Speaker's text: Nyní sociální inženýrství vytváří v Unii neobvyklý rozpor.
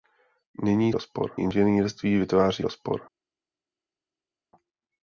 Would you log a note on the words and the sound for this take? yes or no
yes